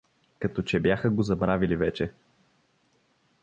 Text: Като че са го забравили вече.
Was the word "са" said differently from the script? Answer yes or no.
yes